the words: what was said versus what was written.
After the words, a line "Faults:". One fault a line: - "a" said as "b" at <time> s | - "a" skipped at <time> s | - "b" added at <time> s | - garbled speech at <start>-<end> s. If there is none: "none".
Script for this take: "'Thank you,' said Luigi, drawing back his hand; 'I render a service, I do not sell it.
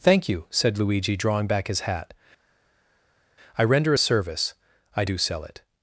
"'Thank you,' said Luigi, drawing back his hat; 'I render a service, I do sell it.
Faults:
- "hand" said as "hat" at 1.8 s
- "not" skipped at 5.2 s